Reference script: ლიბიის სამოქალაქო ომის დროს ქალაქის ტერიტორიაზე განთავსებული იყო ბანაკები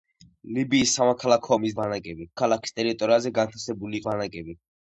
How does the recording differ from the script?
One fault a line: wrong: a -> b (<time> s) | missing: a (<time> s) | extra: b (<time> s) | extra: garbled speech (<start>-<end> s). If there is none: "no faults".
wrong: დროს -> ბანაკები (1.8 s)
missing: იყო (4.0 s)